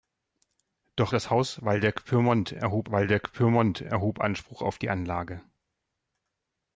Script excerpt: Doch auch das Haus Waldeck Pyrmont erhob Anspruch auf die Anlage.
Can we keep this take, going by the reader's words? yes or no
no